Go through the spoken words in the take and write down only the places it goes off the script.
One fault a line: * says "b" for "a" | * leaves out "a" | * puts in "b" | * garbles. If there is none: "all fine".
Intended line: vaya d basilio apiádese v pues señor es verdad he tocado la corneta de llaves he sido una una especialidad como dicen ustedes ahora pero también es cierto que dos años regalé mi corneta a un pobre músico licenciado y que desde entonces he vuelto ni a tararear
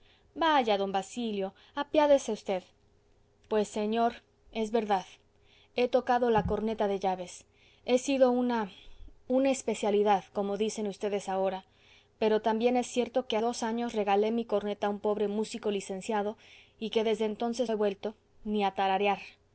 all fine